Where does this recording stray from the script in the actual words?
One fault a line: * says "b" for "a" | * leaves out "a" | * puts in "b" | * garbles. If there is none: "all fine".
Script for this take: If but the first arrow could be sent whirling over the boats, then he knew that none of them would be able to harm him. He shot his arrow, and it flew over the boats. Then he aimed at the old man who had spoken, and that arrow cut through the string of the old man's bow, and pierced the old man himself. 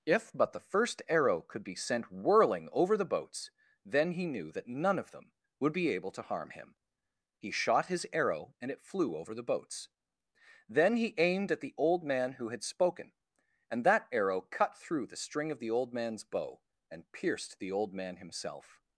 all fine